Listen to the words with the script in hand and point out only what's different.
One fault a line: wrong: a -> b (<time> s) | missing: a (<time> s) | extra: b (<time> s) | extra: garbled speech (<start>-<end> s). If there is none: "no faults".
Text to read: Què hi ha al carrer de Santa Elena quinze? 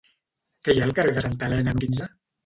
no faults